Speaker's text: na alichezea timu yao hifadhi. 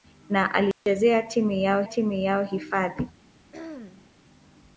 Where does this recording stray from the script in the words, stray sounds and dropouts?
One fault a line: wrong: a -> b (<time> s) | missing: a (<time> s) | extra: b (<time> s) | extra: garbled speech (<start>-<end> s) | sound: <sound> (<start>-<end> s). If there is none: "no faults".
sound: dropout (0.7-0.9 s)
extra: timu yao (1.8 s)
sound: throat clearing (3.5-4.1 s)